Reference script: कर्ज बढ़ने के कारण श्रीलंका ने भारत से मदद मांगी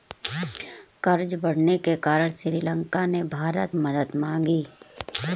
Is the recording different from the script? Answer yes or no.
yes